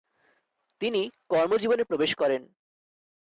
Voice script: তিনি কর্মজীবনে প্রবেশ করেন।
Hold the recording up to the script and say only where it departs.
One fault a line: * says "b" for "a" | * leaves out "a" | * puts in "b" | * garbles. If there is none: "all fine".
all fine